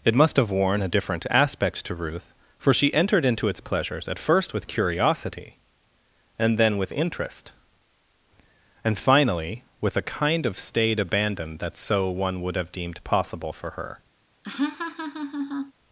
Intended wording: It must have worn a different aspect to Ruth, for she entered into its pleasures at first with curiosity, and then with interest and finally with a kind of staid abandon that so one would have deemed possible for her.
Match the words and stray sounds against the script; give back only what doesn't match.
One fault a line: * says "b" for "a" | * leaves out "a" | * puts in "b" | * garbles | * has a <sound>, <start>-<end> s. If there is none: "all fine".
* has a laugh, 14.4-15.7 s